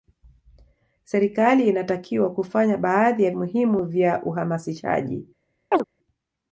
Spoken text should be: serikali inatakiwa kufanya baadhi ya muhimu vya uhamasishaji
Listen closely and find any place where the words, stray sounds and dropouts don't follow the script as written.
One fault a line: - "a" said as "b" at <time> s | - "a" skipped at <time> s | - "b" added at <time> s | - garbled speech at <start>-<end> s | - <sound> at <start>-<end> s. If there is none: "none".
- chirp at 5.7-5.8 s